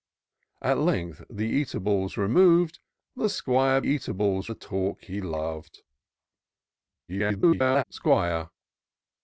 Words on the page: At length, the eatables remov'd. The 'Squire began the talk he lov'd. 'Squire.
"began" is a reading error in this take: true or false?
true